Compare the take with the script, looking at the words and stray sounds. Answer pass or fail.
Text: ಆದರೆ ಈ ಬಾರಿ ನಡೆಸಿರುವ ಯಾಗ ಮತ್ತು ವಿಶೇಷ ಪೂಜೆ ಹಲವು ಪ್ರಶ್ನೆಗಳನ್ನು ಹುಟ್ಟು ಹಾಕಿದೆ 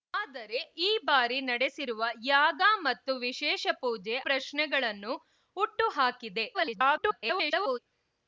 fail